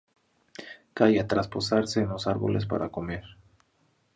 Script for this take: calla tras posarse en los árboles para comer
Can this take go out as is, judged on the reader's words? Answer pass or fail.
pass